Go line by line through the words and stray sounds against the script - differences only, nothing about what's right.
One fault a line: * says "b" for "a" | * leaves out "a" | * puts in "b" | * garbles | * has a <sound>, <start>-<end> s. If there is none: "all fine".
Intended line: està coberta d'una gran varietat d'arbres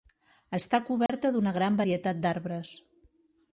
* has a dropout, 1.1-1.1 s